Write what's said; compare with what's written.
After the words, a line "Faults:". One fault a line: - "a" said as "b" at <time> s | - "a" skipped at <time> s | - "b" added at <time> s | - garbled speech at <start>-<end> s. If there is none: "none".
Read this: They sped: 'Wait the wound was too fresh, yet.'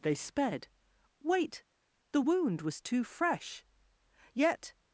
They sped: 'Wait the wound was too fresh, yet.'
Faults:
none